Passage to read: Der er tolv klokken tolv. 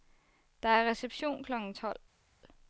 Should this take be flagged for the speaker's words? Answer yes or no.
yes